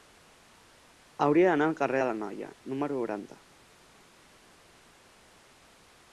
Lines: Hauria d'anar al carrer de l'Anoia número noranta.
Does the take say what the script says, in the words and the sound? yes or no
yes